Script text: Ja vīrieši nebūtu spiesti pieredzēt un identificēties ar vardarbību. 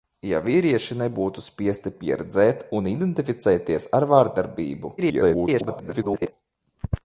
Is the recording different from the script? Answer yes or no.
yes